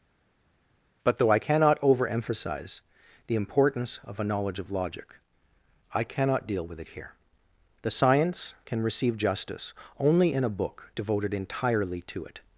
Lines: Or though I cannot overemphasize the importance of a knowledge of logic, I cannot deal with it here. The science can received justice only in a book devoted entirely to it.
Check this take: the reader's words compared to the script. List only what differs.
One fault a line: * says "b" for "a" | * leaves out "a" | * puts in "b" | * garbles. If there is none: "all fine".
* says "But" for "Or"
* says "receive" for "received"